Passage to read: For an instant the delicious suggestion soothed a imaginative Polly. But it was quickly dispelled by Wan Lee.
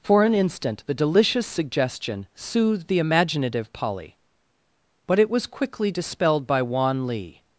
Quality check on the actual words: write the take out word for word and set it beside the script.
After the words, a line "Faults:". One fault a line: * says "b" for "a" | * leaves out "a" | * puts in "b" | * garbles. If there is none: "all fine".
For an instant the delicious suggestion soothed the imaginative Polly. But it was quickly dispelled by Wan Lee.
Faults:
* says "the" for "a"